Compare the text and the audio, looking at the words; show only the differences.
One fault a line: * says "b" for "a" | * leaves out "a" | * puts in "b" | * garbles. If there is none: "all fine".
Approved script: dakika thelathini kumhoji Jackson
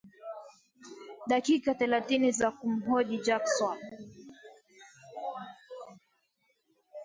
* puts in "za"